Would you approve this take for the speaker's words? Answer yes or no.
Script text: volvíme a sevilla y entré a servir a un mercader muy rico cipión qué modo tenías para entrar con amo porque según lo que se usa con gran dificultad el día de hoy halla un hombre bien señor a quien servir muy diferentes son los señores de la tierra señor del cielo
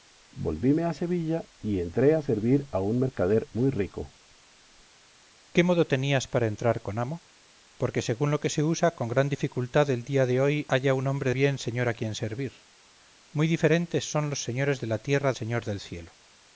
yes